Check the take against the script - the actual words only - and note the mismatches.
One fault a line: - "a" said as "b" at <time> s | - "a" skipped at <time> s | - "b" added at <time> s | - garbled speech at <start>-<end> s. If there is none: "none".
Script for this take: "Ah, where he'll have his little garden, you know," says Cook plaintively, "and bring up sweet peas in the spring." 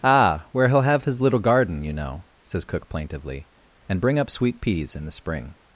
none